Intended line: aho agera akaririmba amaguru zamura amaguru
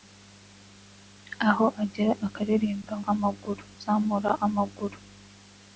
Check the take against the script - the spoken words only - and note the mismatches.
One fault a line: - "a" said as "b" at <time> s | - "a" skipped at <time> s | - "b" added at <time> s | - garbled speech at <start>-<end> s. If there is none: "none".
none